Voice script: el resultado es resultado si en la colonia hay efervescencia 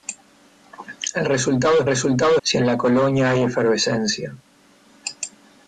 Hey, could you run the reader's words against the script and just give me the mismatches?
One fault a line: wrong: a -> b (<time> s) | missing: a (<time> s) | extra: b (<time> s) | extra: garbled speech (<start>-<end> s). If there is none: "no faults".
no faults